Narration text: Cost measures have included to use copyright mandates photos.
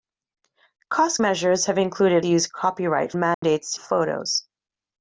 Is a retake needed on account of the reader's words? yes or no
no